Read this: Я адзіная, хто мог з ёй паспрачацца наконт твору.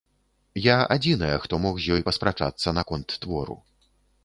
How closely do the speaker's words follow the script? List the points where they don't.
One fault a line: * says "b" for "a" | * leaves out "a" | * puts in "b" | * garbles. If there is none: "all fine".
all fine